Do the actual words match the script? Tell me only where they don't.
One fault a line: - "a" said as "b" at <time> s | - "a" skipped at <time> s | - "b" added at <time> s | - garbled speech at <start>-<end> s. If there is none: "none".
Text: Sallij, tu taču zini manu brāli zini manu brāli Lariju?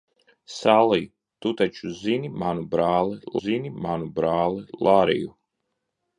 none